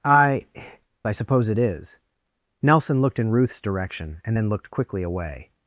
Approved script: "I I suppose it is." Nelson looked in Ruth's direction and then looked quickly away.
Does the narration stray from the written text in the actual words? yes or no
no